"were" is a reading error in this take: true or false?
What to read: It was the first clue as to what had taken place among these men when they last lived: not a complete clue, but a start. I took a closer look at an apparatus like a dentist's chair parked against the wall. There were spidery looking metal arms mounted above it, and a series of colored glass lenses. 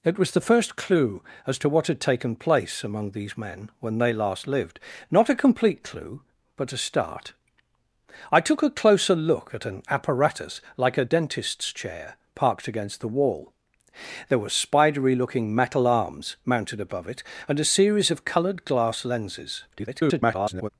false